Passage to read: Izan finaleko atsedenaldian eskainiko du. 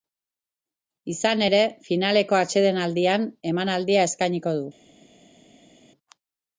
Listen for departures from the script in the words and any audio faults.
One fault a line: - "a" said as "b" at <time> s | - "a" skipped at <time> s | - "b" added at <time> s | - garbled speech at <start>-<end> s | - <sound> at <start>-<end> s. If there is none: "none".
- "ere" added at 1.5 s
- "emanaldia" added at 3.5 s